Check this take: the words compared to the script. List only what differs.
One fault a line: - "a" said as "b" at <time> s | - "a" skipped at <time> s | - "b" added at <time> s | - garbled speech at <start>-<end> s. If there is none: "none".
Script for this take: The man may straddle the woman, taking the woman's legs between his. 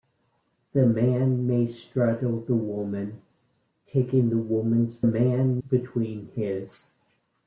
- "legs" said as "man" at 5.0 s